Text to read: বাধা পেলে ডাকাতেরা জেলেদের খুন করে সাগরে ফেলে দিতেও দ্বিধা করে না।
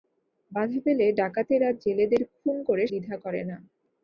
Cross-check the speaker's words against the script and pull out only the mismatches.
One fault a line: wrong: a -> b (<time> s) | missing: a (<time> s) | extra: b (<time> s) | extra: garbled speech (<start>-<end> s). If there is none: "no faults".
missing: সাগরে ফেলে দিতেও (2.8 s)